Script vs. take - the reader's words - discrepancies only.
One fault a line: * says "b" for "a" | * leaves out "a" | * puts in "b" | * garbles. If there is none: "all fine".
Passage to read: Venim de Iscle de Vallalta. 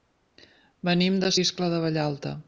all fine